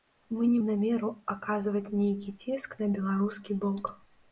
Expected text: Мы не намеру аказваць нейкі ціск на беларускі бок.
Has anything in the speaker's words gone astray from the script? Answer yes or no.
no